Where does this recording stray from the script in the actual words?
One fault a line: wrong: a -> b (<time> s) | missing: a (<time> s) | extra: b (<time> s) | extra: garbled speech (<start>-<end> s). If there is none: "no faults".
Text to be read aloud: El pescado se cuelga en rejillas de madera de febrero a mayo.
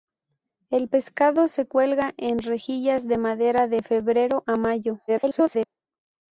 extra: garbled speech (5.1-5.6 s)